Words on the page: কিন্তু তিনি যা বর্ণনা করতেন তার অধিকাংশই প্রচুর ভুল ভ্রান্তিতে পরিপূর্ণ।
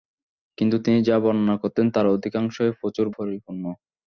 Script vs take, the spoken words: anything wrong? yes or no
yes